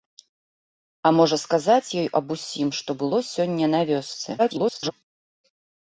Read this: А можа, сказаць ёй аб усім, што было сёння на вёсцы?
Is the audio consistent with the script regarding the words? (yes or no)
no